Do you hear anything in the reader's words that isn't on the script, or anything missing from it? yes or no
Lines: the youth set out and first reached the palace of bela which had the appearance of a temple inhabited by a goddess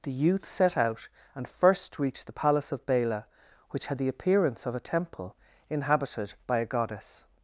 no